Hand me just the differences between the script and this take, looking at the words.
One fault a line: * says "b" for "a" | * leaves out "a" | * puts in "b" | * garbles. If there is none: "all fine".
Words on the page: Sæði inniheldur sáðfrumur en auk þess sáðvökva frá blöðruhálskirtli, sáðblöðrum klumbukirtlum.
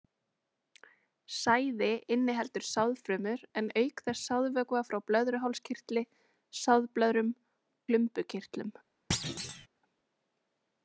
all fine